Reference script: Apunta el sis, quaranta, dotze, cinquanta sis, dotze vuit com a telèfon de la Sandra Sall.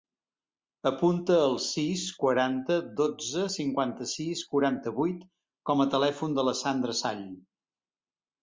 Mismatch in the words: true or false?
true